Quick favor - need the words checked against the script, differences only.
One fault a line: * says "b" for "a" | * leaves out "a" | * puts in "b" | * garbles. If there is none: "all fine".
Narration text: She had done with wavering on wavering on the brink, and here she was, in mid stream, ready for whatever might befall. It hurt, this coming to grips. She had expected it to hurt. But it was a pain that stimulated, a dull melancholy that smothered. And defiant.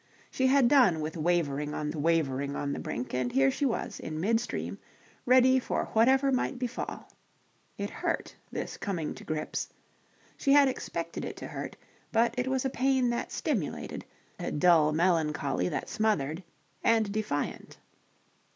all fine